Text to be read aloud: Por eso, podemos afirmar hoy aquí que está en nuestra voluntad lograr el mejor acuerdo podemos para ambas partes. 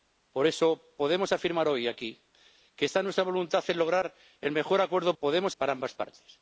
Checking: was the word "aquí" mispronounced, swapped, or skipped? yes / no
no